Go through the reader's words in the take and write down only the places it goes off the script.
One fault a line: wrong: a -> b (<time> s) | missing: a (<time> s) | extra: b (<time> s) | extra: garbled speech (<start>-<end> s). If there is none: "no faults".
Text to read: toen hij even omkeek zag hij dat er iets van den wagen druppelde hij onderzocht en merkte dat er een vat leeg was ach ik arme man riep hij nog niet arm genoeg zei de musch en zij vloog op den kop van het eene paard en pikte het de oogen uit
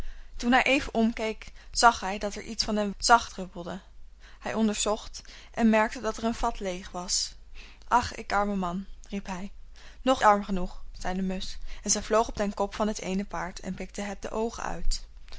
wrong: wagen -> zag (3.0 s)
missing: niet (10.2 s)